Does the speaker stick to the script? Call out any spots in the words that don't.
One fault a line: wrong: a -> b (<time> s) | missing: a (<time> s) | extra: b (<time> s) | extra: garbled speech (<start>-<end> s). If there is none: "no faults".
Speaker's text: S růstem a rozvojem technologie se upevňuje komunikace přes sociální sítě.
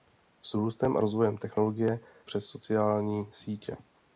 missing: se upevňuje komunikace (2.0 s)